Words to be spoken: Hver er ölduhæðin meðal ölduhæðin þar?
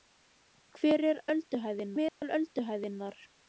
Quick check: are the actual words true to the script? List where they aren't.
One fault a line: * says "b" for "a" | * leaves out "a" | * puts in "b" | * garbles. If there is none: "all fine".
all fine